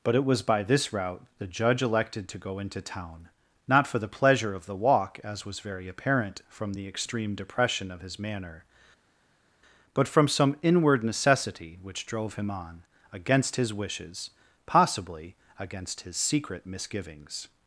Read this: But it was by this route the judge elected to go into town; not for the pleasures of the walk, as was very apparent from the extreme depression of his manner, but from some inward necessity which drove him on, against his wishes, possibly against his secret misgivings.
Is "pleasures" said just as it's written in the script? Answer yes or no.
no